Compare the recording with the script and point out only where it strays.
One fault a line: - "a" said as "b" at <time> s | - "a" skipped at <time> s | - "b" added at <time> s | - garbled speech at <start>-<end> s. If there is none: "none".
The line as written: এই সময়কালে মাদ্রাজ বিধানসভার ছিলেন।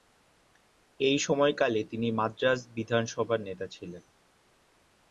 - "তিনি" added at 1.8 s
- "নেতা" added at 3.4 s